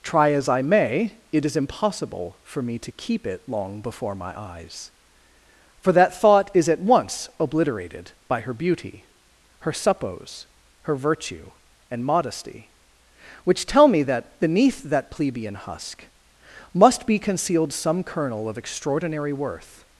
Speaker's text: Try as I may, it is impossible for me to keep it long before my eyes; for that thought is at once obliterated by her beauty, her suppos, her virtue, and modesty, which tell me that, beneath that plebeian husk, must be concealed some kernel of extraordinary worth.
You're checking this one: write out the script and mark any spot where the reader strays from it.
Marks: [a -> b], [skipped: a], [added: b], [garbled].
Try as I may, it is impossible for me to keep it long before my eyes; for that thought is at once obliterated by her beauty, her suppos, her virtue, and modesty, which tell me that, beneath that plebeian husk, must be concealed some kernel of extraordinary worth.